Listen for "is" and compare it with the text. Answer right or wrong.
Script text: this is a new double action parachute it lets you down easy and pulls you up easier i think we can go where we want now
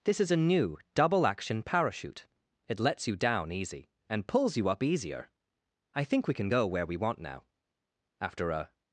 right